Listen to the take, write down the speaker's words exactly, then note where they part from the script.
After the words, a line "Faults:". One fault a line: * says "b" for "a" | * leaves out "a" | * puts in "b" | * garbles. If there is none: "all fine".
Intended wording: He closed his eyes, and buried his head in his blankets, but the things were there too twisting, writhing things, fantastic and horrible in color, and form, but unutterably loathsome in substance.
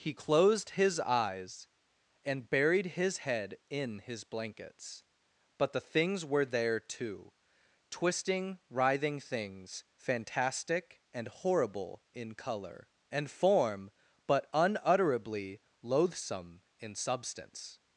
He closed his eyes, and buried his head in his blankets, but the things were there too twisting, writhing things, fantastic and horrible in color, and form, but unutterably loathsome in substance.
Faults:
all fine